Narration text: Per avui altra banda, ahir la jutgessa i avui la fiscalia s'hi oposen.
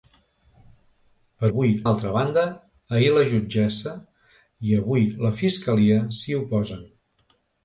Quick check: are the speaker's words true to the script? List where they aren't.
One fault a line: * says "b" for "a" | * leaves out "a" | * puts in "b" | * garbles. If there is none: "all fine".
all fine